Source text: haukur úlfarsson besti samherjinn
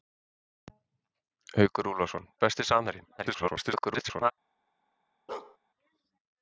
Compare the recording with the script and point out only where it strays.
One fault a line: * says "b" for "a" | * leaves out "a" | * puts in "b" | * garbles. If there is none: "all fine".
* garbles